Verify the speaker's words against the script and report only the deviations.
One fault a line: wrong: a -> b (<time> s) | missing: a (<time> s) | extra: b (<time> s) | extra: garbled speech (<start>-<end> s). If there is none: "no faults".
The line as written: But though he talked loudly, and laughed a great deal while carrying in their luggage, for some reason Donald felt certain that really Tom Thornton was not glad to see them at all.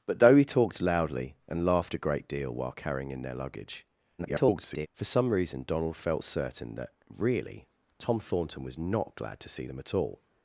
extra: garbled speech (4.2-4.9 s)